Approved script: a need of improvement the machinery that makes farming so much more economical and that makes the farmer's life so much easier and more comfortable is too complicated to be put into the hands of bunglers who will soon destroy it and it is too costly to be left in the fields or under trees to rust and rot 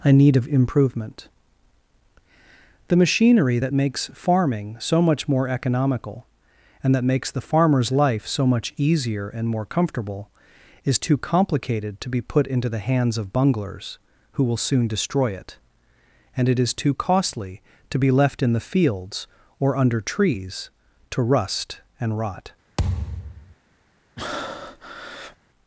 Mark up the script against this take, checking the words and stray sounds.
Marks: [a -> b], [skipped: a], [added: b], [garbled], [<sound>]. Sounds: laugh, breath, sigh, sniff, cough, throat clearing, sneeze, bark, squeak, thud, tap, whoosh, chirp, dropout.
a need of improvement the machinery that makes farming so much more economical and that makes the farmer's life so much easier and more comfortable is too complicated to be put into the hands of bunglers who will soon destroy it and it is too costly to be left in the fields or under trees to rust and rot [thud] [breath]